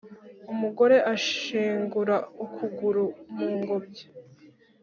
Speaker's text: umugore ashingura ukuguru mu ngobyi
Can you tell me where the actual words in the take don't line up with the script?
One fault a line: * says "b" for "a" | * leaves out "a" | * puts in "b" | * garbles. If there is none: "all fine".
all fine